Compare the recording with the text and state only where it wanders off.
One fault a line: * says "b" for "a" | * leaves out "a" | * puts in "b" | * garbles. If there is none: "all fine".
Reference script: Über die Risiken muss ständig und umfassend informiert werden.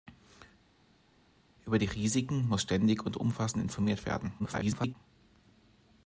* garbles